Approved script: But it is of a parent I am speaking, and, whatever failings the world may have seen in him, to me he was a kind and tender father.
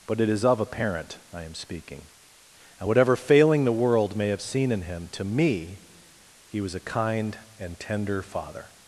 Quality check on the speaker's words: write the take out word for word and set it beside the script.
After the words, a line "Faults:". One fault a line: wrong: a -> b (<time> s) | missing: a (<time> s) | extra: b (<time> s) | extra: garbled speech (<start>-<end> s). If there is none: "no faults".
But it is of a parent I am speaking, and, whatever failing the world may have seen in him, to me he was a kind and tender father.
Faults:
wrong: failings -> failing (3.2 s)